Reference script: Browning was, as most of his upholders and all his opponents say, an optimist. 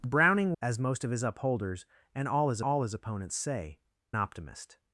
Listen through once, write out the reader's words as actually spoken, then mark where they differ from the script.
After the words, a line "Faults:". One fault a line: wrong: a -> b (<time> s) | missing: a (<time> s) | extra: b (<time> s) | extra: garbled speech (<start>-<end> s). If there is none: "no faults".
Browning as most of his upholders and all his all his opponents say, optimist.
Faults:
missing: was (0.6 s)
extra: all his (2.6 s)
missing: an (3.8 s)